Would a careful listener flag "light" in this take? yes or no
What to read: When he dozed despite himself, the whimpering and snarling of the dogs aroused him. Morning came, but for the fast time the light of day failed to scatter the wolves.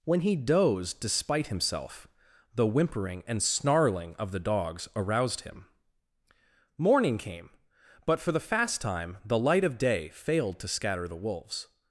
no